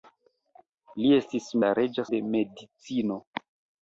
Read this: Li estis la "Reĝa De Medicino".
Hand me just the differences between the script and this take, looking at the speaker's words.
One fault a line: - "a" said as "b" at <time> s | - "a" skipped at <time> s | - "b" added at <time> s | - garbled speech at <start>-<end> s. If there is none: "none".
none